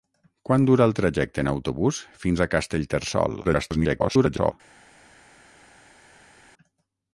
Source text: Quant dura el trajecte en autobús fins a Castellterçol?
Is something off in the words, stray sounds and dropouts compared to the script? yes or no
yes